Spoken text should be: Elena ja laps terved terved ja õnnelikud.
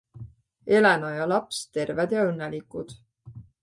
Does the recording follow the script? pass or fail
fail